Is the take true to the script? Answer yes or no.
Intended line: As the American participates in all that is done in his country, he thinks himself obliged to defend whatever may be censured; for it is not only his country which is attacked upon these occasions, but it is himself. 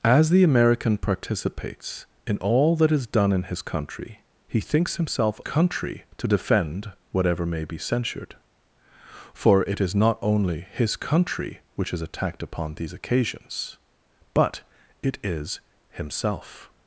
no